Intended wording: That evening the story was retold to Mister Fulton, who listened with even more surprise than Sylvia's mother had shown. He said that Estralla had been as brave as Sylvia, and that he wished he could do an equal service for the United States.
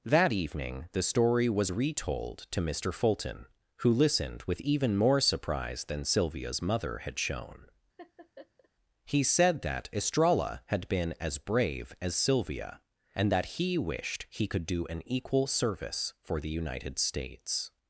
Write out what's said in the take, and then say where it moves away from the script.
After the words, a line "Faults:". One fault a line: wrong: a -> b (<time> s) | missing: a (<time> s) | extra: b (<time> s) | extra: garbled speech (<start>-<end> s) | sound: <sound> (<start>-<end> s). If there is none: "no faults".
That evening the story was retold to Mister Fulton, who listened with even more surprise than Sylvia's mother had shown. He said that Estralla had been as brave as Sylvia, and that he wished he could do an equal service for the United States.
Faults:
sound: laugh (8.0-8.7 s)